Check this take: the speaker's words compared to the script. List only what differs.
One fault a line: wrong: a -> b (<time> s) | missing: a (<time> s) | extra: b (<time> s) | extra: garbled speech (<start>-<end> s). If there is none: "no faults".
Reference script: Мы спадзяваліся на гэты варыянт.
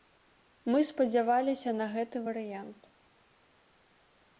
no faults